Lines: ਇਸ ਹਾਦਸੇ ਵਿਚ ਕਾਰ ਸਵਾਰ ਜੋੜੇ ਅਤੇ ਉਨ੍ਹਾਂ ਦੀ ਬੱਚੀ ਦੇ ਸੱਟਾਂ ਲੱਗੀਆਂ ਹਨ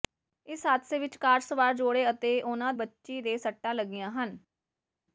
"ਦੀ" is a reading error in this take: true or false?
true